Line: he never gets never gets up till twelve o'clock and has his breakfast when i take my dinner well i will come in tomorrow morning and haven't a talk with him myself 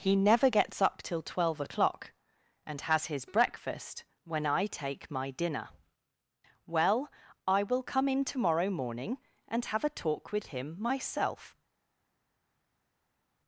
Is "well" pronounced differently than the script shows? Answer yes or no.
no